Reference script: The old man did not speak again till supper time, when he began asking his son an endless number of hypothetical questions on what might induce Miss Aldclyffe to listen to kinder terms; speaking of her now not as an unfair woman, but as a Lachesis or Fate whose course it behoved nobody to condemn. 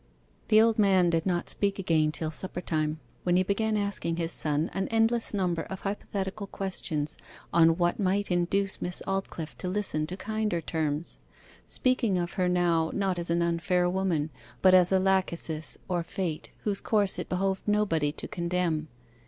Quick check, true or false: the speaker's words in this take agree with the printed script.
true